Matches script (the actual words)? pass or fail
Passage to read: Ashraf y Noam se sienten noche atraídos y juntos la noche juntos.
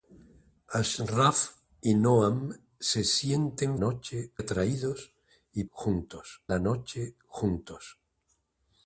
pass